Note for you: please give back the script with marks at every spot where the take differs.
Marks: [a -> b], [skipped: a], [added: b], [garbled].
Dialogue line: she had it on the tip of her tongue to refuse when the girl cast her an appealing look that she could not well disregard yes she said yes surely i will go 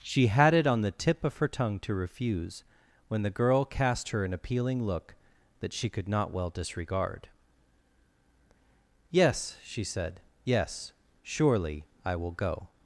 she had it on the tip of her tongue to refuse when the girl cast her an appealing look that she could not well disregard yes she said yes surely i will go